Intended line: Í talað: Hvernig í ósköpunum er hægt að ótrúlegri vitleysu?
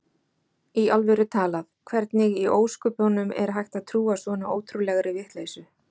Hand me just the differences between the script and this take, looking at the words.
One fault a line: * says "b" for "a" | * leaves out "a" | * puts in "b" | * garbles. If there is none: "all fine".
* puts in "alvöru"
* puts in "trúa svona"